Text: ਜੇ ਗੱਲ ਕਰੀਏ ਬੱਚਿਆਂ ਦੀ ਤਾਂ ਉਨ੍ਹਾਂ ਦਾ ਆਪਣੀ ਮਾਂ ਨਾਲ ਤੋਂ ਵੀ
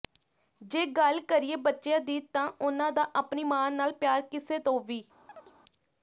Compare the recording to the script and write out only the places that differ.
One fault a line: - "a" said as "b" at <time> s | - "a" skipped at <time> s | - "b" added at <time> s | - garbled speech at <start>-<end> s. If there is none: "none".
- "ਪਿਆਰ ਕਿਸੇ" added at 3.9 s